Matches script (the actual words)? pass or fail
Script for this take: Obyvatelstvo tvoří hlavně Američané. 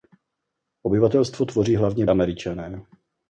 pass